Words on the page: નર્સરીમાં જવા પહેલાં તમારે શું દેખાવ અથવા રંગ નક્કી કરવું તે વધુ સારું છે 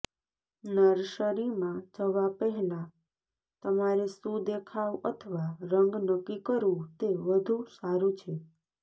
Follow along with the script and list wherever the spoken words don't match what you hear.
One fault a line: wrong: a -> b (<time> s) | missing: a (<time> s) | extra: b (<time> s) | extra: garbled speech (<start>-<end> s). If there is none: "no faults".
no faults